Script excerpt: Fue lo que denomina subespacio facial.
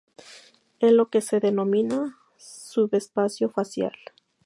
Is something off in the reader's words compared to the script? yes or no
yes